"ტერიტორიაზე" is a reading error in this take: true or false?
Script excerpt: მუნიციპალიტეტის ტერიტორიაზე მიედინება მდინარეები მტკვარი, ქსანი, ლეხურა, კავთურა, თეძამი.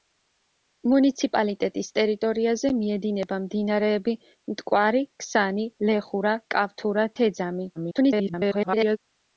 false